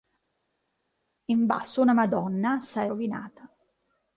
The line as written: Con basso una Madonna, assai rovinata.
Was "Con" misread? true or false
true